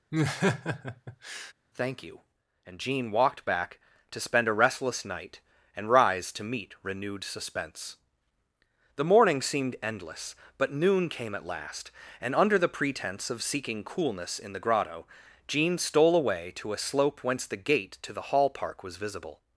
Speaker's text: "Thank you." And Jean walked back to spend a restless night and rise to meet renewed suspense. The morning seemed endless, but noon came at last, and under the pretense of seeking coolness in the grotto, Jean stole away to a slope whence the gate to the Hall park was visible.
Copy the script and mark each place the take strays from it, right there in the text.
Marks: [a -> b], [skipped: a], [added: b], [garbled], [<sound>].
[laugh] "Thank you." And Jean walked back to spend a restless night and rise to meet renewed suspense. The morning seemed endless, but noon came at last, and under the pretense of seeking coolness in the grotto, Jean stole away to a slope whence the gate to the Hall park was visible.